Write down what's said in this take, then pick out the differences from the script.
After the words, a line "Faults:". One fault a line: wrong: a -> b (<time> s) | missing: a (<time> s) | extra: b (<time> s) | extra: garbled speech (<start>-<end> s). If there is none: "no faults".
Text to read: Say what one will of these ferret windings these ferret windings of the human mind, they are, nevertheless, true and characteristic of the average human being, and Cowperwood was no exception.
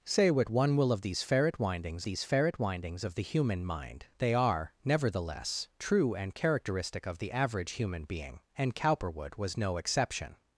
Say what one will of these ferret windings these ferret windings of the human mind, they are, nevertheless, true and characteristic of the average human being, and Cowperwood was no exception.
Faults:
no faults